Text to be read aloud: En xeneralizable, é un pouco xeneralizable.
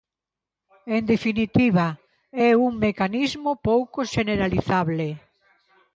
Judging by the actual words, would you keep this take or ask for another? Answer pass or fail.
fail